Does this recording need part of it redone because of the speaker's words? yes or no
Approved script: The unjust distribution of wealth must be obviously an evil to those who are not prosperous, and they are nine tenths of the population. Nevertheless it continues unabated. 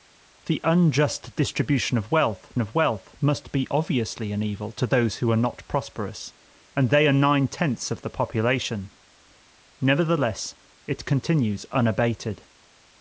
yes